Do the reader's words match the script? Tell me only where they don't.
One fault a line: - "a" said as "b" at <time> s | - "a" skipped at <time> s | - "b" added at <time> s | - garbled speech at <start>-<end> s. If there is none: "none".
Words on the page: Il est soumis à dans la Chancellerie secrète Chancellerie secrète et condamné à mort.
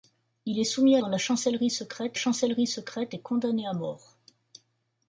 none